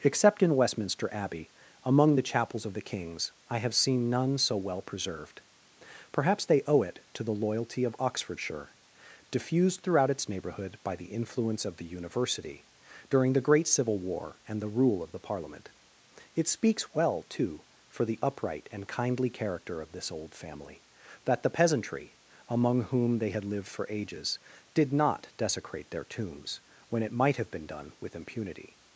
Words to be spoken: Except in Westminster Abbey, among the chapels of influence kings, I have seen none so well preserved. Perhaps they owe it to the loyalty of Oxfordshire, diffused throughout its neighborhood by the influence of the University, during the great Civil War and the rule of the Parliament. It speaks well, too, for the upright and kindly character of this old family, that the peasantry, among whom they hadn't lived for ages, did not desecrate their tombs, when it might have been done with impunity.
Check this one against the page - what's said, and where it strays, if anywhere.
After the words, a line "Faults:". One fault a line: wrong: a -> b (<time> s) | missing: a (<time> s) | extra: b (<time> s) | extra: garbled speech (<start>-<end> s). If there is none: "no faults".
Except in Westminster Abbey, among the chapels of the kings, I have seen none so well preserved. Perhaps they owe it to the loyalty of Oxfordshire, diffused throughout its neighborhood by the influence of the University, during the great Civil War and the rule of the Parliament. It speaks well, too, for the upright and kindly character of this old family, that the peasantry, among whom they had lived for ages, did not desecrate their tombs, when it might have been done with impunity.
Faults:
wrong: influence -> the (2.7 s)
wrong: hadn't -> had (23.3 s)